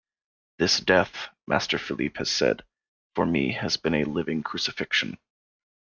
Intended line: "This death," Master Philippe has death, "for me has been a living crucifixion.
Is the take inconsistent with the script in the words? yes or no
yes